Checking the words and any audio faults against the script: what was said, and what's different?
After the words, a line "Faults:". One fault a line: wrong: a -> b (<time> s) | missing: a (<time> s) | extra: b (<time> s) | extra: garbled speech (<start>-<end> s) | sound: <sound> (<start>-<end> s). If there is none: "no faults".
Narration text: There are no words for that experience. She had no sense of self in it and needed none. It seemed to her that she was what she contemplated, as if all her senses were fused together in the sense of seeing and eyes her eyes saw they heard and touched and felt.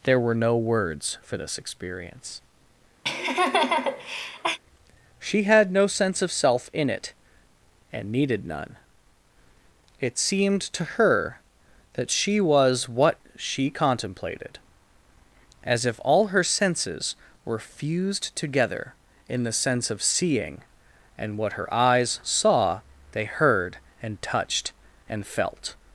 There were no words for this experience. She had no sense of self in it and needed none. It seemed to her that she was what she contemplated, as if all her senses were fused together in the sense of seeing and what her eyes saw they heard and touched and felt.
Faults:
wrong: are -> were (0.2 s)
wrong: that -> this (1.4 s)
sound: laugh (3.0-4.6 s)
wrong: eyes -> what (21.4 s)